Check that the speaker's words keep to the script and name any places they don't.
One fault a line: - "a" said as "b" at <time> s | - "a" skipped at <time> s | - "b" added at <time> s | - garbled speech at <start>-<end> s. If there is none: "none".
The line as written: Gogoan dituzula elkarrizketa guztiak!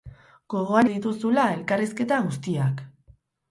none